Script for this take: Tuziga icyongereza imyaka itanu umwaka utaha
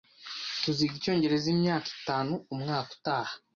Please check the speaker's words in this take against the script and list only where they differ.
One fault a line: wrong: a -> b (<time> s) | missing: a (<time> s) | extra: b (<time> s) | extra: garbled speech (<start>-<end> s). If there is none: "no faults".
no faults